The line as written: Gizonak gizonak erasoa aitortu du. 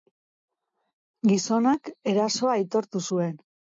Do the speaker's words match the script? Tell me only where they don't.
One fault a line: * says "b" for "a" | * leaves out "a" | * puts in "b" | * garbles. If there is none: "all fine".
* leaves out "gizonak"
* says "zuen" for "du"